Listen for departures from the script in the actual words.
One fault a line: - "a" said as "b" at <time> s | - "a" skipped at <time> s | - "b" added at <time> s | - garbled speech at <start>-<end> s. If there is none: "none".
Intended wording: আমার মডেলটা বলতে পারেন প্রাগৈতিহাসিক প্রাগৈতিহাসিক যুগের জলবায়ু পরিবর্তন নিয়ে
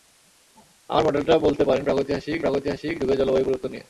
none